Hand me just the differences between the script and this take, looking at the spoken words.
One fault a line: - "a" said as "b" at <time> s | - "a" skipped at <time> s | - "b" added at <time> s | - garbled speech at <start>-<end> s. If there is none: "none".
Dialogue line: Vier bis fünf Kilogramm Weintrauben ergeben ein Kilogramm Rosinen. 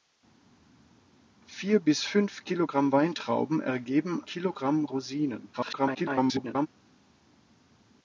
- "ein" skipped at 4.2 s
- garbled speech at 5.5-6.7 s